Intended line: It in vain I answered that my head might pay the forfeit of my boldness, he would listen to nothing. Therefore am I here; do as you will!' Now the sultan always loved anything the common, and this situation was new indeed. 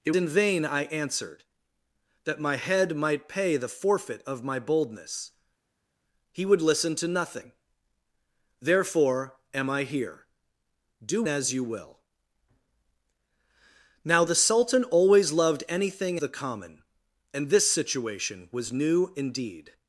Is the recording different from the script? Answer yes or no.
no